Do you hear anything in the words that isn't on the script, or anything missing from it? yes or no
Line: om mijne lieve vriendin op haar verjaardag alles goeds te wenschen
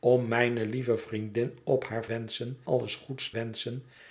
yes